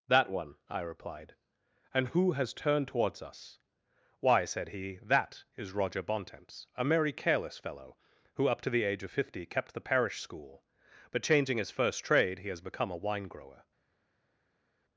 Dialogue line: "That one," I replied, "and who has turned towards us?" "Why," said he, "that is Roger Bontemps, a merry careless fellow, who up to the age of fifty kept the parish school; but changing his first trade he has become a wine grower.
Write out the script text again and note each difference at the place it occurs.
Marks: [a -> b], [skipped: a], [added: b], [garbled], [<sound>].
"That one," I replied, "and who has turned towards us?" "Why," said he, "that is Roger Bontemps, a merry careless fellow, who up to the age of fifty kept the parish school; but changing his first trade he has become a wine grower.